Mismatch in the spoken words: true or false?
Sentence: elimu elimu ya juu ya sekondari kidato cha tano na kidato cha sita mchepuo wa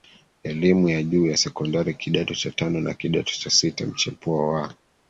true